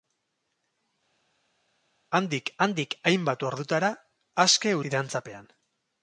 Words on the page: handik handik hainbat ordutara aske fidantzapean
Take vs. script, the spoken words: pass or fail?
pass